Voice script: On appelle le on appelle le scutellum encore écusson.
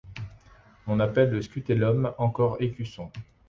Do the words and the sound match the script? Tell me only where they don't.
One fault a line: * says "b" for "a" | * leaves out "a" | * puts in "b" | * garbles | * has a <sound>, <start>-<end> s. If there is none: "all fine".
* leaves out "on appelle le"